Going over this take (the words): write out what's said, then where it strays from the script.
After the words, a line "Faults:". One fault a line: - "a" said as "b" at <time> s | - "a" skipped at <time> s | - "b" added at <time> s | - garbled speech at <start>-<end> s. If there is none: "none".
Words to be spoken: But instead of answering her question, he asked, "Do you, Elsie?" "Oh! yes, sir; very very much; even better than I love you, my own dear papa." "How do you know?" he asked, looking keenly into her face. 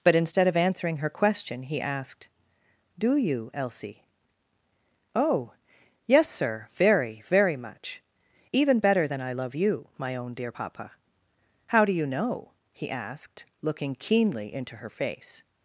But instead of answering her question, he asked, "Do you, Elsie?" "Oh! yes, sir; very very much; even better than I love you, my own dear papa." "How do you know?" he asked, looking keenly into her face.
Faults:
none